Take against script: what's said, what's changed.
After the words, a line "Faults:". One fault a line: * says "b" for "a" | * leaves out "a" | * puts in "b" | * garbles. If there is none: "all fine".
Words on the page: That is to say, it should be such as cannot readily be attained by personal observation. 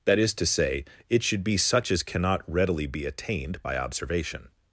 That is to say, it should be such as cannot readily be attained by observation.
Faults:
* leaves out "personal"